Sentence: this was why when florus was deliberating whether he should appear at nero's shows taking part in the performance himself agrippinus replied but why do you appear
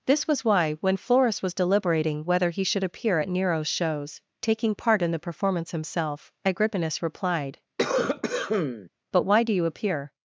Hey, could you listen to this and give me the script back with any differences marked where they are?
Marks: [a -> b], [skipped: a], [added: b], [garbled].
this was why when florus was deliberating whether he should appear at nero's shows taking part in the performance himself agrippinus replied but why do you appear